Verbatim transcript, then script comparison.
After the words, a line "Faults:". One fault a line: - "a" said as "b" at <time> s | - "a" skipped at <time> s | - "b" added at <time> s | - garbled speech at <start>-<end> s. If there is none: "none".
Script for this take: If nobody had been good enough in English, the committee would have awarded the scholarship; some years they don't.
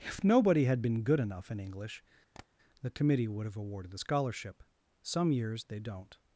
If nobody had been good enough in English, the committee would have awarded the scholarship; some years they don't.
Faults:
none